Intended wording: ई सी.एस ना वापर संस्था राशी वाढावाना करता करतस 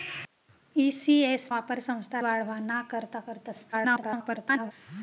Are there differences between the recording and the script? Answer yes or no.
yes